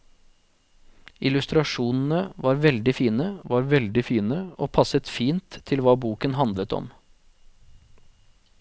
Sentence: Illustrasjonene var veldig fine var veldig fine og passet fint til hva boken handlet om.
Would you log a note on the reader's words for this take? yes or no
no